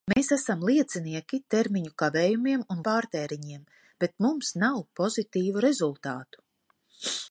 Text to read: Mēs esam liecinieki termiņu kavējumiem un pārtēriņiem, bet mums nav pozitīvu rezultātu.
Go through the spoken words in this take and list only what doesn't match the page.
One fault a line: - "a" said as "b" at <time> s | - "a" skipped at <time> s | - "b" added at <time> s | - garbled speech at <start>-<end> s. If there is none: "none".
none